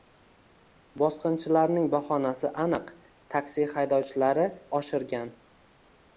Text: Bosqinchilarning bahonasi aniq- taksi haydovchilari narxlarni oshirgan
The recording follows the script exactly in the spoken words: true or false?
false